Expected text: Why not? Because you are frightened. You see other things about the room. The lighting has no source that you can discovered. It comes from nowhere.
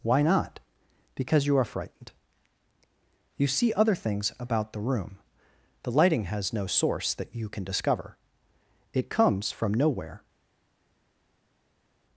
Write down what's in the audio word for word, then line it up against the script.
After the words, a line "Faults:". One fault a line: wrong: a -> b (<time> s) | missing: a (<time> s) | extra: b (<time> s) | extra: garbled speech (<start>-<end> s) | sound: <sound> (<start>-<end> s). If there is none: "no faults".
Why not? Because you are frightened. You see other things about the room. The lighting has no source that you can discover. It comes from nowhere.
Faults:
wrong: discovered -> discover (7.6 s)